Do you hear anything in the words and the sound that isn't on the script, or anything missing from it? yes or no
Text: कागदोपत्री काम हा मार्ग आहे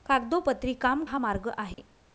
yes